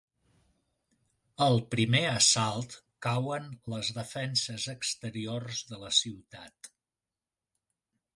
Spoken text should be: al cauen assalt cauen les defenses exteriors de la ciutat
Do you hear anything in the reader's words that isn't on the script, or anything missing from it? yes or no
yes